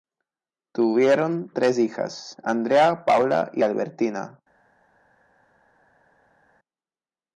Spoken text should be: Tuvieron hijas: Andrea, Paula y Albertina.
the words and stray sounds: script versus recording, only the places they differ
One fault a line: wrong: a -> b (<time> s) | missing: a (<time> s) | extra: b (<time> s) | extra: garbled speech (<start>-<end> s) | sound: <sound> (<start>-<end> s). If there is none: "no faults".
extra: tres (1.5 s)